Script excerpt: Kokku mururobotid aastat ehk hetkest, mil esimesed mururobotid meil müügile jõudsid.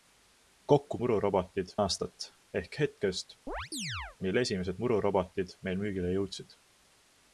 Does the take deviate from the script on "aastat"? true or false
false